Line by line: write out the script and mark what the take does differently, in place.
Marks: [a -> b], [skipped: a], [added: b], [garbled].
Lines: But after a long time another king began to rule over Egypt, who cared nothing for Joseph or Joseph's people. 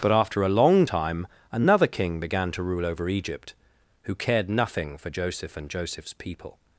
But after a long time another king began to rule over Egypt, who cared nothing for Joseph [or -> and] Joseph's people.